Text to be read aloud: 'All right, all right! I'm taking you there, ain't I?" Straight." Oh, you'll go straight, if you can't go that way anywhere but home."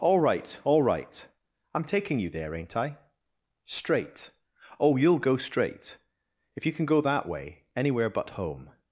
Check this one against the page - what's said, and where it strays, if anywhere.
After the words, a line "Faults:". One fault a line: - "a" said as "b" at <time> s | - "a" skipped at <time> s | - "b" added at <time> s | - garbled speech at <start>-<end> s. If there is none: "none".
'All right, all right! I'm taking you there, ain't I?" Straight." Oh, you'll go straight, if you can go that way anywhere but home."
Faults:
- "can't" said as "can" at 6.7 s